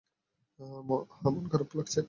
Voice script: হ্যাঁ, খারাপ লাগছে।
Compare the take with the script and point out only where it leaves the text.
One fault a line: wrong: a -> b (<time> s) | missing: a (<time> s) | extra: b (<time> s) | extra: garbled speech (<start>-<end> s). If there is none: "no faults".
extra: মন (1.2 s)